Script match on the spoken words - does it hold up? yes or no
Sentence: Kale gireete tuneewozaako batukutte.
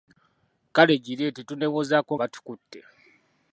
yes